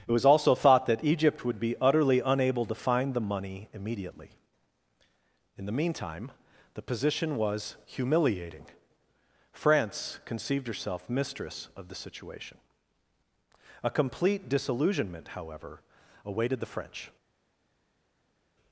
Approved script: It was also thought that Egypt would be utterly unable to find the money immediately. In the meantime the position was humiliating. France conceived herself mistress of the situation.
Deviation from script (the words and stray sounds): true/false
true